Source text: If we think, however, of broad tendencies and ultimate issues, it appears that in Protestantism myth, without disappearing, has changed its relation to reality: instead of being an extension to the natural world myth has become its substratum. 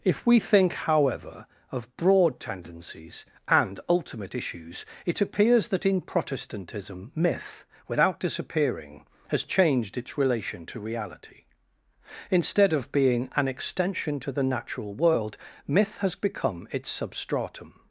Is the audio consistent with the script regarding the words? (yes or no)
yes